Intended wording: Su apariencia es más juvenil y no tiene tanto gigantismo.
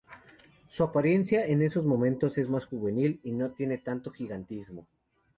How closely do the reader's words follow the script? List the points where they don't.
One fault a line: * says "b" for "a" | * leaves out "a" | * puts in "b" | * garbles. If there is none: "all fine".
* puts in "en esos momentos"